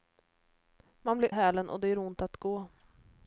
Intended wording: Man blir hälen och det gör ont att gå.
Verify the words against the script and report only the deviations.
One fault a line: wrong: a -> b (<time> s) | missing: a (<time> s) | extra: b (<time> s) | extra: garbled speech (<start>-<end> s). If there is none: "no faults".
no faults